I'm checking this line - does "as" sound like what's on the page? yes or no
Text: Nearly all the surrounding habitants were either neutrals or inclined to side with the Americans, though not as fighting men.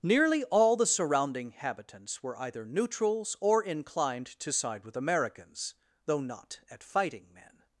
no